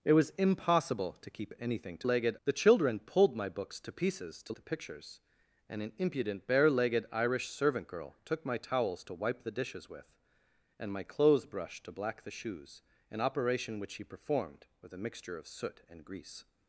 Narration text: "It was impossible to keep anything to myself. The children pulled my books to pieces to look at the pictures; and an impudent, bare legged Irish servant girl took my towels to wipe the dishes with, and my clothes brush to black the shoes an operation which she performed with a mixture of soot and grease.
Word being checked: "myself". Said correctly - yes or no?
no